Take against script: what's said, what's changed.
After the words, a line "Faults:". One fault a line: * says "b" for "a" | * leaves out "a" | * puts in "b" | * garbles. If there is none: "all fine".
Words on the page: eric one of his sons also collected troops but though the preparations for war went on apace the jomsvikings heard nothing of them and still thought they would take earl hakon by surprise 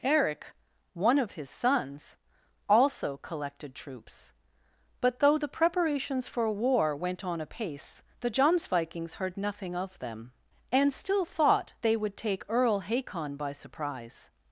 eric one of his sons also collected troops but though the preparations for war went on apace the jomsvikings heard nothing of them and still thought they would take earl hakon by surprise
Faults:
all fine